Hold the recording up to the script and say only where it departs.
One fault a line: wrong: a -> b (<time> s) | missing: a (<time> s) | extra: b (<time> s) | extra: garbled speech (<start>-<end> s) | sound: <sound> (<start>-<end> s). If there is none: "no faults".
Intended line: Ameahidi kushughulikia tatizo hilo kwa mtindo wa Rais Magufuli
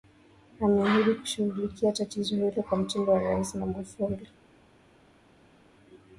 no faults